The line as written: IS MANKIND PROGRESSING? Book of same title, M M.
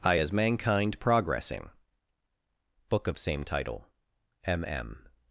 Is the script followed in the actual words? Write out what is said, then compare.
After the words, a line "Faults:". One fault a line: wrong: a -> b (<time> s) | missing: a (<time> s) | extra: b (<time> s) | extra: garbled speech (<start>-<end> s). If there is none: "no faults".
I as MANKIND PROGRESSING? Book of same title, M M.
Faults:
wrong: IS -> I as (0.0 s)